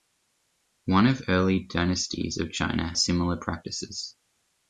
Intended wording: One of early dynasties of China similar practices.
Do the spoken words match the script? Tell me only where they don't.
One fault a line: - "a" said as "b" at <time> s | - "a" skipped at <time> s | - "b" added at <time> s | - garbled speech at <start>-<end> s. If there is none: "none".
none